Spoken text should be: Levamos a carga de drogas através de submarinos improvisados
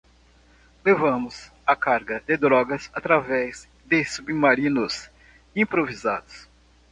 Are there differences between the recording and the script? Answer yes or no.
no